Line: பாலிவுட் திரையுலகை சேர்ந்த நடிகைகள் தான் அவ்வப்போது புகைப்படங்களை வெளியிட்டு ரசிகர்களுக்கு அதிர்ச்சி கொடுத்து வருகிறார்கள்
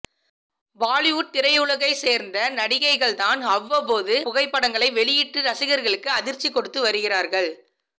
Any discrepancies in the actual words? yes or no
no